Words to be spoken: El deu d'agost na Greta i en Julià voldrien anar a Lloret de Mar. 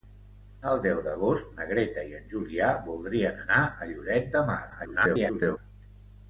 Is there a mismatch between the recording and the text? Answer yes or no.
yes